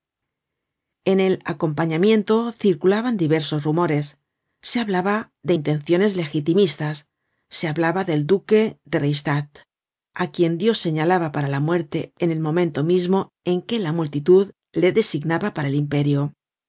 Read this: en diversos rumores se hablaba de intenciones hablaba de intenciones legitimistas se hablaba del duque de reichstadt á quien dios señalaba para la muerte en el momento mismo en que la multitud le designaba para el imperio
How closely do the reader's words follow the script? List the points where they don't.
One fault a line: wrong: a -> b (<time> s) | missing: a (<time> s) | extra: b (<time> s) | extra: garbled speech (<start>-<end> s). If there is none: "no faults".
extra: el acompañamiento circulaban (1.2 s)
missing: hablaba de intenciones (6.1 s)